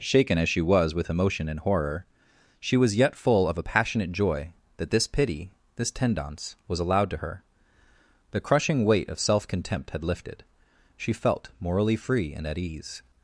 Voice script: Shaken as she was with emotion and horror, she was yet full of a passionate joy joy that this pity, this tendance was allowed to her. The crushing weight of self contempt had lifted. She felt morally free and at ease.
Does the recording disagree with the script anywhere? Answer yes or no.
yes